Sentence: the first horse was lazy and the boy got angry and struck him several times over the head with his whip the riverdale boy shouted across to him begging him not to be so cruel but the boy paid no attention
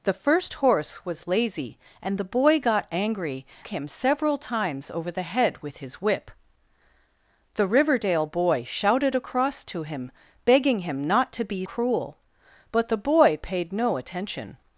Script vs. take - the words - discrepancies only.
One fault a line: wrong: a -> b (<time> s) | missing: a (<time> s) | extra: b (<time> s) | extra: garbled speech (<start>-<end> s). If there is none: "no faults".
missing: and struck (3.5 s)
missing: so (11.6 s)